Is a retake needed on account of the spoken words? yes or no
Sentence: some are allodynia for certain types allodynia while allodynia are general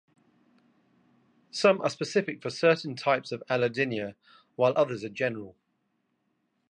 yes